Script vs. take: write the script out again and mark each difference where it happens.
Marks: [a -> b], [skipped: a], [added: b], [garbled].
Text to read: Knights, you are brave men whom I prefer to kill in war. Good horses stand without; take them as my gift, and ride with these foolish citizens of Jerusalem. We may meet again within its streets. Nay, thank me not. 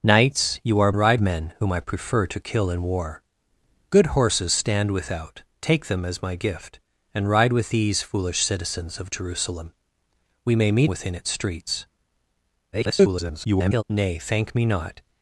Knights, you are [brave -> ride] men whom I prefer to kill in war. Good horses stand without; take them as my gift, and ride with these foolish citizens of Jerusalem. We may meet [skipped: again] within its streets. [garbled] Nay, thank me not.